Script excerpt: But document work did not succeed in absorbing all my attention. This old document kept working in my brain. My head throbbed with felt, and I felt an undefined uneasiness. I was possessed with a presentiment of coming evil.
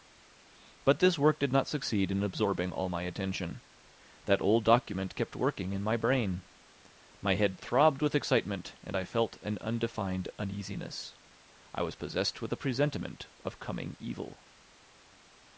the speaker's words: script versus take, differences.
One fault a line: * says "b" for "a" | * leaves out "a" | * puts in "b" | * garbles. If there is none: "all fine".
* says "this" for "document"
* says "That" for "This"
* says "excitement" for "felt"